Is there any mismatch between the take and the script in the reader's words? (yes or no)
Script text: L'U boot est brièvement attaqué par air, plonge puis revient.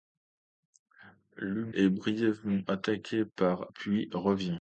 yes